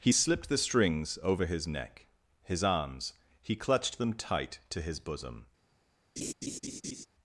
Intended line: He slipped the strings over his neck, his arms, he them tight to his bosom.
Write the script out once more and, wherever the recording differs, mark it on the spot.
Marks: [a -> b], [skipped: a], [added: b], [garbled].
He slipped the strings over his neck, his arms, he [added: clutched] them tight to his bosom.